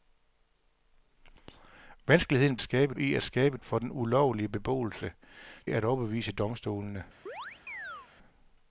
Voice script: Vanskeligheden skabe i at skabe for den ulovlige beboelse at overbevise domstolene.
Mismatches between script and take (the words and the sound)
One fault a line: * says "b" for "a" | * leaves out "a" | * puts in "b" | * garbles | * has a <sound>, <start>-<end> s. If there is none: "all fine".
* has a chirp, 7.3-8.1 s